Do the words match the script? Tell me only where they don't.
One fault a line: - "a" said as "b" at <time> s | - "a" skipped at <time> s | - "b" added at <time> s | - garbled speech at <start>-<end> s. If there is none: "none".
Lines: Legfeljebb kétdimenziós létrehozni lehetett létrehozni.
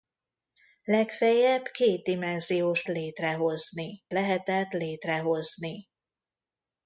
none